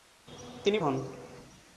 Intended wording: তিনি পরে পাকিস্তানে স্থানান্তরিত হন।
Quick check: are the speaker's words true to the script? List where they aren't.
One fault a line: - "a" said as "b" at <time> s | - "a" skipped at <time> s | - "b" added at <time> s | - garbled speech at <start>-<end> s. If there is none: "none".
- "পরে পাকিস্তানে স্থানান্তরিত" skipped at 0.8 s